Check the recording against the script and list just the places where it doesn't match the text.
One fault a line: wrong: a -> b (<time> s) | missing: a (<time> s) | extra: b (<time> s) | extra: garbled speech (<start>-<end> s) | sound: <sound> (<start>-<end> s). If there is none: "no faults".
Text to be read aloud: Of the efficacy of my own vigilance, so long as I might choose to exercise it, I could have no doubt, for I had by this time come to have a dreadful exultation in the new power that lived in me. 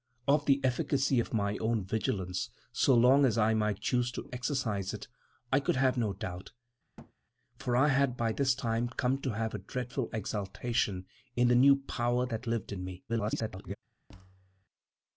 sound: thud (7.0-7.1 s)
extra: garbled speech (13.1-13.8 s)
sound: thud (14.1-14.6 s)